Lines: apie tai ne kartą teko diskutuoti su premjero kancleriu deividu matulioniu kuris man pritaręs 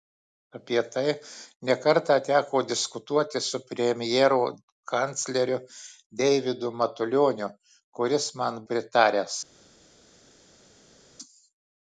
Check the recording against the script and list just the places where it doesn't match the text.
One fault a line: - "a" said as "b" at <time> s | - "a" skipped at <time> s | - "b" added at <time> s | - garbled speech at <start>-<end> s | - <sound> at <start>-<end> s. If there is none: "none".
none